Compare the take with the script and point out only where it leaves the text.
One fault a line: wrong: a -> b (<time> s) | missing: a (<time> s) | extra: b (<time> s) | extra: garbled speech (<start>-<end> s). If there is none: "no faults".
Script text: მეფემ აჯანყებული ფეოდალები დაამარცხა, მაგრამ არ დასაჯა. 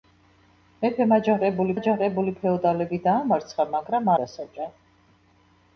extra: აჯანყებული (1.8 s)
missing: არ (4.1 s)